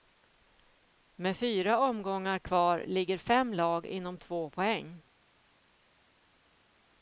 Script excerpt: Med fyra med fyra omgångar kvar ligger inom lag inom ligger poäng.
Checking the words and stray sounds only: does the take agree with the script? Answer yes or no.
no